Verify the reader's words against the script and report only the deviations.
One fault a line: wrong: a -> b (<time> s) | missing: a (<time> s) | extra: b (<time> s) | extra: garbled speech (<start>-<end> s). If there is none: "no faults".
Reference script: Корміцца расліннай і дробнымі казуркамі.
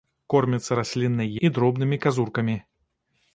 no faults